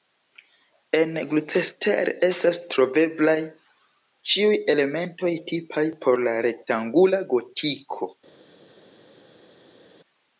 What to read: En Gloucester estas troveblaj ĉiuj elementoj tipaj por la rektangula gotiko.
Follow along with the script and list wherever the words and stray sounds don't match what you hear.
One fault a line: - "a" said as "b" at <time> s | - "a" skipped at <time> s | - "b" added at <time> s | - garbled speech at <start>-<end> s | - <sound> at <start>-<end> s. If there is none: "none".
none